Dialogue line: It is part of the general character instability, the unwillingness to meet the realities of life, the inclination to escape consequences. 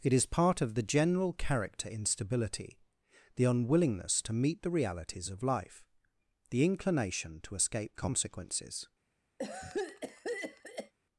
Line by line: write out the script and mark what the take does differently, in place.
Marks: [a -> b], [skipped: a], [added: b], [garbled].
It is part of the general character instability, the unwillingness to meet the realities of life, the inclination to escape consequences.